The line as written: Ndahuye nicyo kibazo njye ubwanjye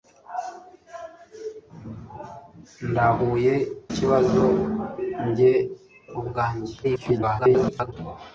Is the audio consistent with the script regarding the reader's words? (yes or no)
no